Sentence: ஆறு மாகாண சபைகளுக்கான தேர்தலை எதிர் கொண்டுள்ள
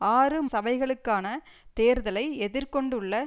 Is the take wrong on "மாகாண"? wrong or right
wrong